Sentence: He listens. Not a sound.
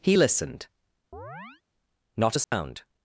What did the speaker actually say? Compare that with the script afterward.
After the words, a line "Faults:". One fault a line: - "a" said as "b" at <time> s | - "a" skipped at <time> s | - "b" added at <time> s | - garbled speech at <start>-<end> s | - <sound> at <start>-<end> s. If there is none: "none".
He listened. Not a sound.
Faults:
- "listens" said as "listened" at 0.2 s
- chirp at 1.1-1.6 s
- dropout at 2.4-2.5 s